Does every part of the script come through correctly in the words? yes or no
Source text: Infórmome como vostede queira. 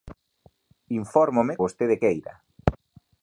no